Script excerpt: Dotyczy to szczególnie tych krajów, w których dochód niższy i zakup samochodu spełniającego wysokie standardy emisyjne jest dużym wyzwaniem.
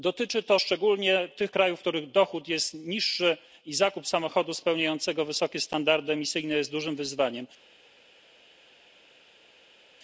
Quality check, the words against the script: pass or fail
fail